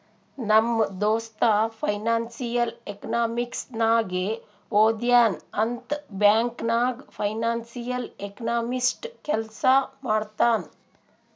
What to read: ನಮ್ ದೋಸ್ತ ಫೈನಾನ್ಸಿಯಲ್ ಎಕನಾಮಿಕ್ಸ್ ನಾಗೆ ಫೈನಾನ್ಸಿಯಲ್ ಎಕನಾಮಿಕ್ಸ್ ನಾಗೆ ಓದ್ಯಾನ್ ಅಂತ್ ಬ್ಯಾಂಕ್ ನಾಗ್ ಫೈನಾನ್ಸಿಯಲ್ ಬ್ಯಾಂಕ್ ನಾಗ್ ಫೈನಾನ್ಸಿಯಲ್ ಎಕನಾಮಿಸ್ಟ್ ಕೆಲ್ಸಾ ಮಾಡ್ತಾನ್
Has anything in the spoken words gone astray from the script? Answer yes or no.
yes